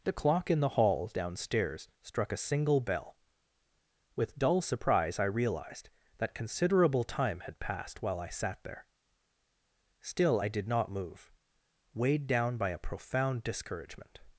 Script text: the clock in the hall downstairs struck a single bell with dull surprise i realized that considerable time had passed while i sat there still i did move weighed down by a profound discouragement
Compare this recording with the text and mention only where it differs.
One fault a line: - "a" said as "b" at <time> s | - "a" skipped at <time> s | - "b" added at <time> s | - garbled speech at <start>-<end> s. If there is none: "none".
- "not" added at 10.7 s